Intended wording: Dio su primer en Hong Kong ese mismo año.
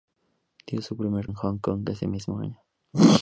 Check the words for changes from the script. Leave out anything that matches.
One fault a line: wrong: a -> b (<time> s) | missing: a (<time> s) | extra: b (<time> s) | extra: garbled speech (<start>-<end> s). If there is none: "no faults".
no faults